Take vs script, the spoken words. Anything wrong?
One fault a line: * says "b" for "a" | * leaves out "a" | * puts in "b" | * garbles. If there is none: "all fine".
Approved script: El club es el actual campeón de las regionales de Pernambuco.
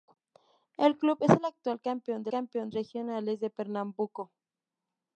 * says "campeón" for "las"